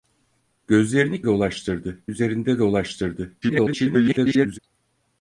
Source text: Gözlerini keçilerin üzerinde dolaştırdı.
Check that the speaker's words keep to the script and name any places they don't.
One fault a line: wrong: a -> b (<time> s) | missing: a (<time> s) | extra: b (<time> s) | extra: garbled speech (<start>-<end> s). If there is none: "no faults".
wrong: keçilerin -> dolaştırdı (1.3 s)
extra: garbled speech (3.4-4.6 s)